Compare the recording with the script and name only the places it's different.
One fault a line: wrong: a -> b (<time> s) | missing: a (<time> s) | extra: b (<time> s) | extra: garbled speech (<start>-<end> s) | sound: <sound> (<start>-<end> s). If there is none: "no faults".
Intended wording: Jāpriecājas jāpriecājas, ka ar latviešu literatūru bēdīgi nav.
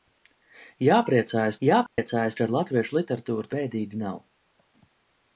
sound: dropout (1.9-2.0 s)